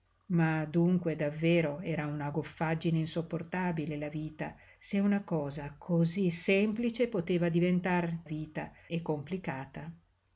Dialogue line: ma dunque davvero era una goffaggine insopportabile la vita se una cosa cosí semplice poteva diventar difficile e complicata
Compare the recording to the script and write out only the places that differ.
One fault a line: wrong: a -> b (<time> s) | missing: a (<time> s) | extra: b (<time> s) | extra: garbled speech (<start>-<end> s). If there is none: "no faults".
wrong: difficile -> vita (8.2 s)